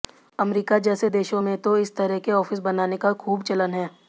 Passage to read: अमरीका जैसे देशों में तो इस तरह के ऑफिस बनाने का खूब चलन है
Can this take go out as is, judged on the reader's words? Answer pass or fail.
pass